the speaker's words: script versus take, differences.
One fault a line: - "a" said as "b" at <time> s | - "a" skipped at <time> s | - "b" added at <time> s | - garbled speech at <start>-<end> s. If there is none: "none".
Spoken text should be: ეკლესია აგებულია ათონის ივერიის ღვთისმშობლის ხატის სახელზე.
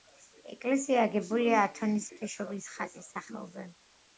- "ივერიის" skipped at 2.1 s